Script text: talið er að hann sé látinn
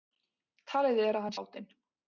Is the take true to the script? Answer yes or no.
no